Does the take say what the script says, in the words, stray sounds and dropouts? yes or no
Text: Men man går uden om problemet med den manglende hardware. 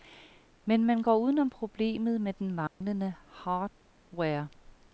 no